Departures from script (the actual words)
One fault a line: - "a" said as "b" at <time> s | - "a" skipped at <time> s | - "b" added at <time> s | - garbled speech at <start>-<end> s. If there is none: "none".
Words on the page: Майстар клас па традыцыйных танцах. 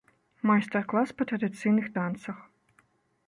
none